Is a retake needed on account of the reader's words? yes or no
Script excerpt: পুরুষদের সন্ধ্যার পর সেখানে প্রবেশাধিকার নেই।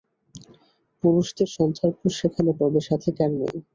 no